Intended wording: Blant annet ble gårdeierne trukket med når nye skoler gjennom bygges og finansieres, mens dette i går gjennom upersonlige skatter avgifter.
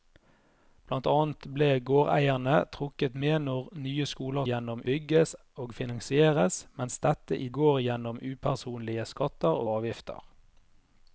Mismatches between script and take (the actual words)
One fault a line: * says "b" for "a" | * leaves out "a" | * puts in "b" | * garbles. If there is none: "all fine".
all fine